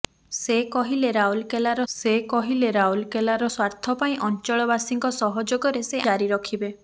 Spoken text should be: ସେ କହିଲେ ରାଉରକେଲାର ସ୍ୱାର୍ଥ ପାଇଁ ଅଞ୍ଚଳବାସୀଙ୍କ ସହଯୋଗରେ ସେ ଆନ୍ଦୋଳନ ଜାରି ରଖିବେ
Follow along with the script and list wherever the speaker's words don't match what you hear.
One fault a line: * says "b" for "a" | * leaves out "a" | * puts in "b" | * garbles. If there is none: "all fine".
* puts in "ସେ କହିଲେ ରାଉରକେଲାର"
* leaves out "ଆନ୍ଦୋଳନ"